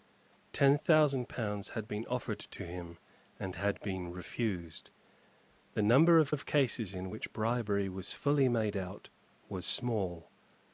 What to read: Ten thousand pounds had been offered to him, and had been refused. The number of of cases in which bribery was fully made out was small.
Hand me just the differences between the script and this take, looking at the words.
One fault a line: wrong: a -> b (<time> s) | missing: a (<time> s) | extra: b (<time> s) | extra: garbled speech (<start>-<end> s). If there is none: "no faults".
no faults